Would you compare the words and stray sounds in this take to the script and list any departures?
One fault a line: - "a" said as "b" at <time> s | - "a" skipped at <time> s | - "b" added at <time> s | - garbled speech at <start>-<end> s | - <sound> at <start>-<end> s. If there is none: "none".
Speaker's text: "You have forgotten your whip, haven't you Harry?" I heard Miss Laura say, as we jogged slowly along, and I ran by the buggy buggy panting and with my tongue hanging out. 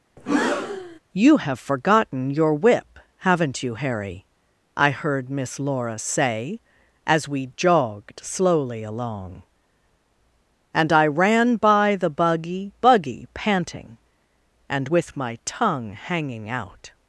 - breath at 0.2-1.0 s